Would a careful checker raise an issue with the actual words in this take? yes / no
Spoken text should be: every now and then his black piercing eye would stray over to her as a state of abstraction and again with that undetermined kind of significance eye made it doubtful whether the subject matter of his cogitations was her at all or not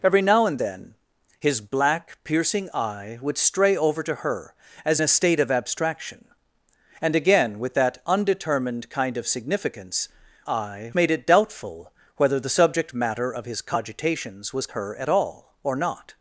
no